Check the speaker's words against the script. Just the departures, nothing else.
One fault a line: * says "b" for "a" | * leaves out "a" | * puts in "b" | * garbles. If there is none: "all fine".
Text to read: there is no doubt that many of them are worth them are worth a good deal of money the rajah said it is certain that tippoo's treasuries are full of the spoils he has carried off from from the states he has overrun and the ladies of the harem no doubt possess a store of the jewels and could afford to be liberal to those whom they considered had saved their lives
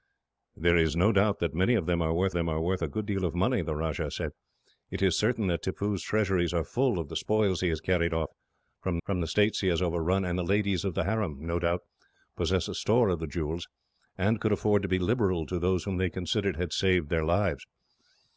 all fine